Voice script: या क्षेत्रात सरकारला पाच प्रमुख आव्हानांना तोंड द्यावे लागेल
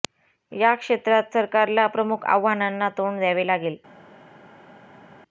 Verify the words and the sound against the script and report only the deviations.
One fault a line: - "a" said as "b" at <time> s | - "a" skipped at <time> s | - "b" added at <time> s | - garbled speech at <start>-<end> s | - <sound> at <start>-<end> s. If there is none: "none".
- "पाच" skipped at 1.9 s